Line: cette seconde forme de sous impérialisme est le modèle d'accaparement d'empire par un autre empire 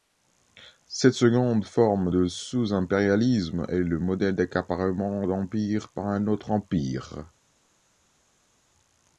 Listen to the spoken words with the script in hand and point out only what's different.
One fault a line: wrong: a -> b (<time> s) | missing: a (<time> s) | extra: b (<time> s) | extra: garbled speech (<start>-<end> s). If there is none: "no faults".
no faults